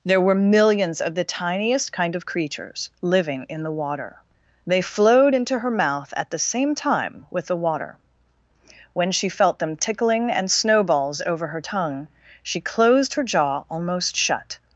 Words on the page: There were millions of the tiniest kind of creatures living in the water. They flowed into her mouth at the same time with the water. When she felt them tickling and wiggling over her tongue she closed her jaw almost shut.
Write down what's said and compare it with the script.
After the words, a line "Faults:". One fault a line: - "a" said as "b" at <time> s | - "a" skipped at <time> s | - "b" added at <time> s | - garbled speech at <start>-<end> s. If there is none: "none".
There were millions of the tiniest kind of creatures living in the water. They flowed into her mouth at the same time with the water. When she felt them tickling and snowballs over her tongue she closed her jaw almost shut.
Faults:
- "wiggling" said as "snowballs" at 10.5 s